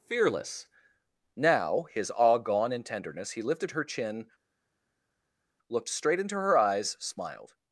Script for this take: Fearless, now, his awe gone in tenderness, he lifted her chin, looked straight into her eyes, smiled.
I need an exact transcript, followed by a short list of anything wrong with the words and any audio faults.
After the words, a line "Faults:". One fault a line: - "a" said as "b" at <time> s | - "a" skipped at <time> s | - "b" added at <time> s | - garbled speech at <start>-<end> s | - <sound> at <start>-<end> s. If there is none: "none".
Fearless, now, his awe gone in tenderness, he lifted her chin, looked straight into her eyes, smiled.
Faults:
none